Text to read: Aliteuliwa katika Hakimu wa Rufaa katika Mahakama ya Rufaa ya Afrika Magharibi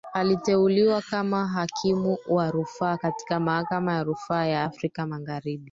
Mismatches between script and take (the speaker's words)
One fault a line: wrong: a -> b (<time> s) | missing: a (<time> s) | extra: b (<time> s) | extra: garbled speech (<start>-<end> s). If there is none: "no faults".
wrong: katika -> kama (1.0 s)